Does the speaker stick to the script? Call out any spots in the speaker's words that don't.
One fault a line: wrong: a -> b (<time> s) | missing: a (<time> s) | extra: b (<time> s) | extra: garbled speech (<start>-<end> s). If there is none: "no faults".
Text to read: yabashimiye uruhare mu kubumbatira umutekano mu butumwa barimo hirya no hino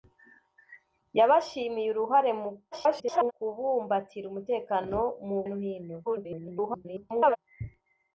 extra: garbled speech (2.7-3.3 s)
missing: butumwa barimo hirya (5.4 s)
extra: garbled speech (6.0-7.4 s)